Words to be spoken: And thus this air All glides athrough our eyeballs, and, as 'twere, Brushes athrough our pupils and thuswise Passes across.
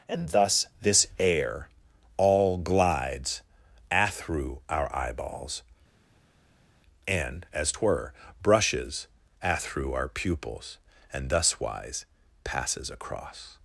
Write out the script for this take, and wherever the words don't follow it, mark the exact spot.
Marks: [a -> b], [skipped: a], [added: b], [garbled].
And thus this air All glides athrough our eyeballs, and, as 'twere, Brushes athrough our pupils and thuswise Passes across.